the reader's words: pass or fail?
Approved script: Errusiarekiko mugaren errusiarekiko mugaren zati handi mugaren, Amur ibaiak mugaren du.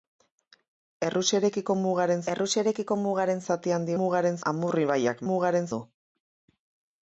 pass